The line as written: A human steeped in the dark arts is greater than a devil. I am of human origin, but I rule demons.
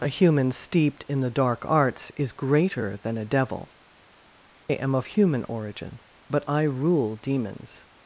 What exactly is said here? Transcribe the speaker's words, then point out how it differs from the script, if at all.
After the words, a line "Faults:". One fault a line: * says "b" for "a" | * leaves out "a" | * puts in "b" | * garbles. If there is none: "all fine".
A human steeped in the dark arts is greater than a devil. am of human origin, but I rule demons.
Faults:
* leaves out "I"